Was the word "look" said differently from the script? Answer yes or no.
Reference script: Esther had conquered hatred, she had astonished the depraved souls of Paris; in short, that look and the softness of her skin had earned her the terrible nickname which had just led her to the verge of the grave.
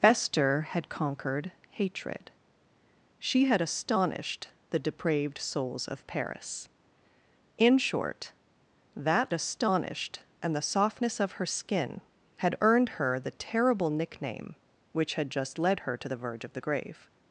yes